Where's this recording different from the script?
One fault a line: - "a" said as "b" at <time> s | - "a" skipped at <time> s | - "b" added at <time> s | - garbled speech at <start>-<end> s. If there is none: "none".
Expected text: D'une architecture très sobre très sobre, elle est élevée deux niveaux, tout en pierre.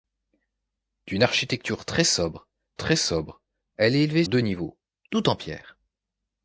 none